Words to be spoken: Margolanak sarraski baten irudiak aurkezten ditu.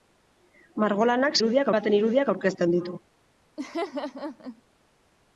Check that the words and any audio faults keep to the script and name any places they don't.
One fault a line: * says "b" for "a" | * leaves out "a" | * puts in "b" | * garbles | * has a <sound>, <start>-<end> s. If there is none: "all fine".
* says "irudiak" for "sarraski"
* has a laugh, 3.6-4.6 s